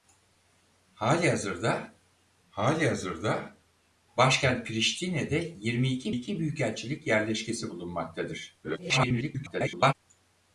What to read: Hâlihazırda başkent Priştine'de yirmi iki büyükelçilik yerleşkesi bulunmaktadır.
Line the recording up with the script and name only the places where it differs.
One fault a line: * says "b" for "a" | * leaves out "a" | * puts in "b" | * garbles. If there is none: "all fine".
* puts in "hâlihazırda"
* puts in "iki"
* garbles